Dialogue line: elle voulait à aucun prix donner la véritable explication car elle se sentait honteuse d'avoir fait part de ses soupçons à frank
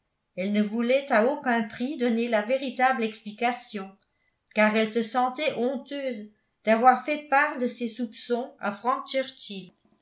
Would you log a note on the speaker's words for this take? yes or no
yes